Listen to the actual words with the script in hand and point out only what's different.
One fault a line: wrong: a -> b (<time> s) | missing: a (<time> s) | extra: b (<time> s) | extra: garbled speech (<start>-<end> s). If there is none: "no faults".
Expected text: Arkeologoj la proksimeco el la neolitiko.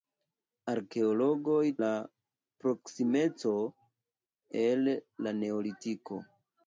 no faults